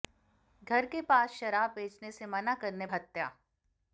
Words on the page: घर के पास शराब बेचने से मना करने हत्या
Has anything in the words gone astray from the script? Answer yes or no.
no